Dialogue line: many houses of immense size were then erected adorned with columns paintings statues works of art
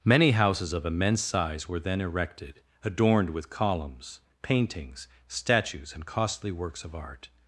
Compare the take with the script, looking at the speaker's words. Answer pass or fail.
fail